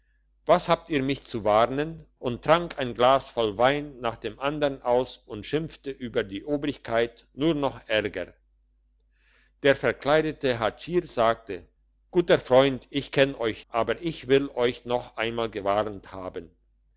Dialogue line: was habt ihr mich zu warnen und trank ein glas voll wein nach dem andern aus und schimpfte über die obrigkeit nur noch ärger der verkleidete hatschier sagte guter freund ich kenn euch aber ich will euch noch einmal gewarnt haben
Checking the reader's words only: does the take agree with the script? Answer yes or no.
yes